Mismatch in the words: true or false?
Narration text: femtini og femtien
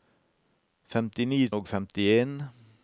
false